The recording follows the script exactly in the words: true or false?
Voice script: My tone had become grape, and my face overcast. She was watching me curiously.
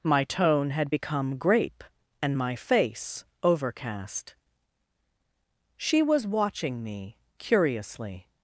true